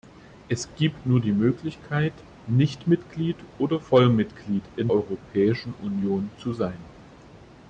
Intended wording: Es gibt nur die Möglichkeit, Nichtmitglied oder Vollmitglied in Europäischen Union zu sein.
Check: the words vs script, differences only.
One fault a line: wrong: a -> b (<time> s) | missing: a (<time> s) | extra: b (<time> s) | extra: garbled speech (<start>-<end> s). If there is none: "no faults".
no faults